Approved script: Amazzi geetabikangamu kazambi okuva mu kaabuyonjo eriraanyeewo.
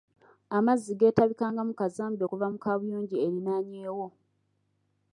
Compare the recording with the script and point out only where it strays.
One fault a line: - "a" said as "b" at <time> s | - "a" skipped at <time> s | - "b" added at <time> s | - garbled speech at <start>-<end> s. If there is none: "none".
none